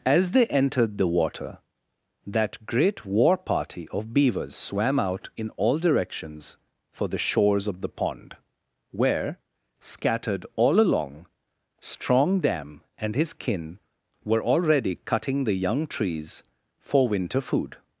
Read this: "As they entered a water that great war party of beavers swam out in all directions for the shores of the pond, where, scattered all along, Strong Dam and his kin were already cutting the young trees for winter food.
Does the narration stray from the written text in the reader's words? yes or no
yes